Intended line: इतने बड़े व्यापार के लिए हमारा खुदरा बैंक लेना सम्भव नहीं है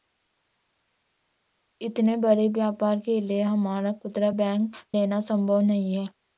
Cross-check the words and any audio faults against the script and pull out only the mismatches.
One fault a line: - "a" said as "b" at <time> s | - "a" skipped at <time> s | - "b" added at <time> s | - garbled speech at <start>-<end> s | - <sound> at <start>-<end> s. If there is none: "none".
none